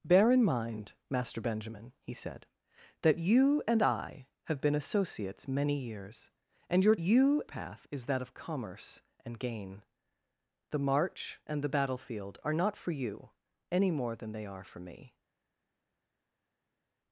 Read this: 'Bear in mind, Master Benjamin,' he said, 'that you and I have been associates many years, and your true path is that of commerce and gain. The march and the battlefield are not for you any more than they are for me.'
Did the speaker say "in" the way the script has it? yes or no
yes